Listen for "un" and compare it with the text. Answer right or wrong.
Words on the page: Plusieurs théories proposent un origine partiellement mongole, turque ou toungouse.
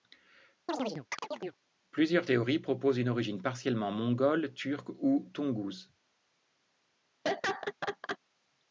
wrong